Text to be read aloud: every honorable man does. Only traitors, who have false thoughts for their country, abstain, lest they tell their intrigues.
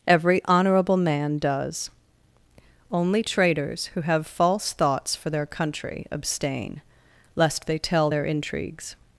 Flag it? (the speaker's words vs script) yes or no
no